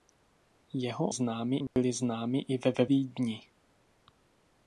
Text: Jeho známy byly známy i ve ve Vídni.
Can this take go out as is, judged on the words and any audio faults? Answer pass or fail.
fail